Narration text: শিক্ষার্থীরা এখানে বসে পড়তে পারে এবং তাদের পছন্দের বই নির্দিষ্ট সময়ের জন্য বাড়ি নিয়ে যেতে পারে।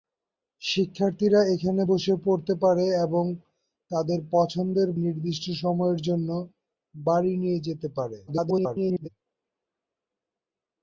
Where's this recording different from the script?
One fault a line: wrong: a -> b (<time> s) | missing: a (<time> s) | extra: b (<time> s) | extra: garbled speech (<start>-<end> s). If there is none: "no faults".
missing: বই (4.9 s)
extra: garbled speech (8.3-9.1 s)